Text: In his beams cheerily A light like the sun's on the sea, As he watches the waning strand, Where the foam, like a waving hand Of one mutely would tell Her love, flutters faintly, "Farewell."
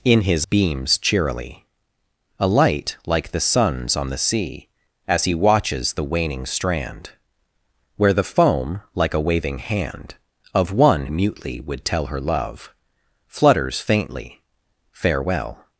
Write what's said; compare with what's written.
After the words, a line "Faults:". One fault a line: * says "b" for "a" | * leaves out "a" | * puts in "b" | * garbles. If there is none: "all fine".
In his beams cheerily A light like the sun's on the sea, As he watches the waning strand, Where the foam, like a waving hand Of one mutely would tell Her love, flutters faintly, "Farewell."
Faults:
all fine